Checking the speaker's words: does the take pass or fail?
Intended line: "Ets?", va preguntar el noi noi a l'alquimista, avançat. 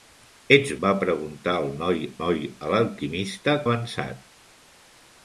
pass